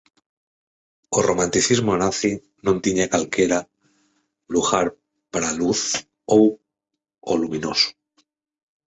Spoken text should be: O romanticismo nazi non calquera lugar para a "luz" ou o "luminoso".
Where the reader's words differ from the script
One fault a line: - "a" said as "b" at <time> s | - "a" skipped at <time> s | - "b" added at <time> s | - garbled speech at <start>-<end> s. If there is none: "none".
- "tiña" added at 2.8 s